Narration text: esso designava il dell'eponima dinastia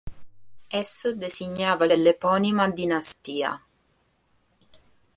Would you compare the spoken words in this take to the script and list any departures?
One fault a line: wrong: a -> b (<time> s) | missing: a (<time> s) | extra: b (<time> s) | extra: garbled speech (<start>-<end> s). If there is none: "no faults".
no faults